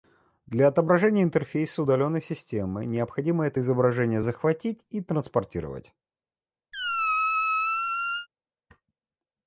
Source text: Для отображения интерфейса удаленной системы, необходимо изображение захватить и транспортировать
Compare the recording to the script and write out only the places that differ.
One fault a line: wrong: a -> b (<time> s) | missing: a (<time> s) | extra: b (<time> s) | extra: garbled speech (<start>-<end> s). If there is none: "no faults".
extra: это (3.5 s)